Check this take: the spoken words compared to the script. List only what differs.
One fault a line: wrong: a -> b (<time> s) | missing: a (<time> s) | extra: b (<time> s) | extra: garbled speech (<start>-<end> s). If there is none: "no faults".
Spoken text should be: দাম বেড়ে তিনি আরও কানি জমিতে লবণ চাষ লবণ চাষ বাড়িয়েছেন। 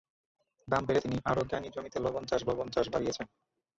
no faults